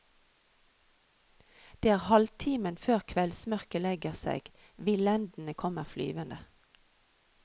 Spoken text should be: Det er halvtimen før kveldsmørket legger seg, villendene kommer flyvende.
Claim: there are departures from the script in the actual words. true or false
false